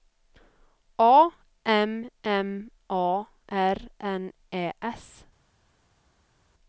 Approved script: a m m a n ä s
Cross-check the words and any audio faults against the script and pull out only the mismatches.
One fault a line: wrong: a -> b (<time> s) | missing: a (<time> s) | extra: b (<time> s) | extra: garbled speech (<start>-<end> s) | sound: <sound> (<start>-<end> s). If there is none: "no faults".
extra: r (3.5 s)